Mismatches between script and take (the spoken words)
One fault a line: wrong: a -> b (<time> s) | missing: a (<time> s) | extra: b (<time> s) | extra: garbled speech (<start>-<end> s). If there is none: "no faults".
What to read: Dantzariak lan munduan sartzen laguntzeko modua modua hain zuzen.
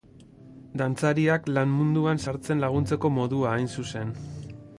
missing: modua (3.6 s)